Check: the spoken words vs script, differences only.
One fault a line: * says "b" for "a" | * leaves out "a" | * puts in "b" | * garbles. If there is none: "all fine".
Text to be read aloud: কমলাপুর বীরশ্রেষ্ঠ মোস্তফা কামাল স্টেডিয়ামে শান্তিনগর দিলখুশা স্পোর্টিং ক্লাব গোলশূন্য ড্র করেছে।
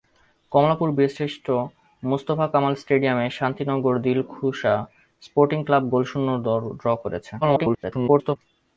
* garbles